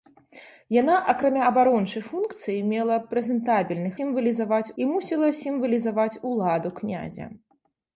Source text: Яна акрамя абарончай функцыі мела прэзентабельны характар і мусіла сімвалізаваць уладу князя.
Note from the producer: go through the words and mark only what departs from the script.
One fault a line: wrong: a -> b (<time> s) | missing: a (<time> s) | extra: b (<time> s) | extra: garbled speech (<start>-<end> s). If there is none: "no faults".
wrong: характар -> сімвалізаваць (4.0 s)